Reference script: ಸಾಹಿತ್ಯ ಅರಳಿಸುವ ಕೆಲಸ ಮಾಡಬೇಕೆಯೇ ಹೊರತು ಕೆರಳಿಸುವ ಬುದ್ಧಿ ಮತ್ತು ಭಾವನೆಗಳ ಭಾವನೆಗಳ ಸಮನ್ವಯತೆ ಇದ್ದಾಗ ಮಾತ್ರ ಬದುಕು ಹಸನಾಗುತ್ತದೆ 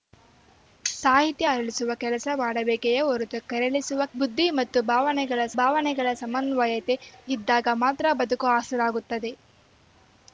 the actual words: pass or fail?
pass